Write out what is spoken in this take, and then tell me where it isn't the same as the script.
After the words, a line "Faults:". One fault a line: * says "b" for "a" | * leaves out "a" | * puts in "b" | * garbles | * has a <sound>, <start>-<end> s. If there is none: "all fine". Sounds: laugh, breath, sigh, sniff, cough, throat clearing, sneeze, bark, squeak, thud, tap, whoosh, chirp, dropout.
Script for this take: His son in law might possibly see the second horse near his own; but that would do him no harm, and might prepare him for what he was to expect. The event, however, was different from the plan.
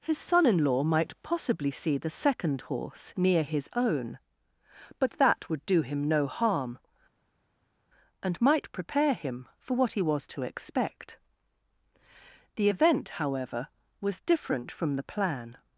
His son in law might possibly see the second horse near his own; but that would do him no harm, and might prepare him for what he was to expect. The event, however, was different from the plan.
Faults:
all fine